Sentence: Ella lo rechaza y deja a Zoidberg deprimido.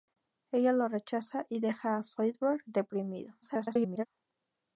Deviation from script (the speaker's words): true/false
true